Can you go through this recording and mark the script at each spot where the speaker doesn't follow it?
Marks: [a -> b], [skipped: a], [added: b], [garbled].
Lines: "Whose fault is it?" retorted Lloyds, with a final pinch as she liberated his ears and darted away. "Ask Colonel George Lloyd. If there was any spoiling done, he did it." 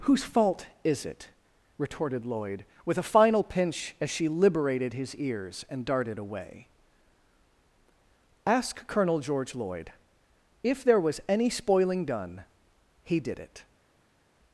"Whose fault is it?" retorted [Lloyds, -> Lloyd] with a final pinch as she liberated his ears and darted away. "Ask Colonel George Lloyd. If there was any spoiling done, he did it."